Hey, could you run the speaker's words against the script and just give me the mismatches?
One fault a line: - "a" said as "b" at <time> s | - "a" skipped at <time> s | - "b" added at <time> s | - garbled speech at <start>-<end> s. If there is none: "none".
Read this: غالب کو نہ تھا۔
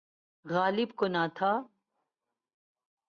none